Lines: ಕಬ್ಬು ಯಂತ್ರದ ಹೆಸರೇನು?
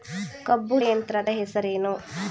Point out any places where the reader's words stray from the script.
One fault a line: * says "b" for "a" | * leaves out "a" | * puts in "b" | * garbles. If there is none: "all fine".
all fine